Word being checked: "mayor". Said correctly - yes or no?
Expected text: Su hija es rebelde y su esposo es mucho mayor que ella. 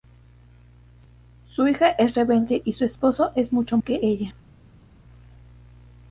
no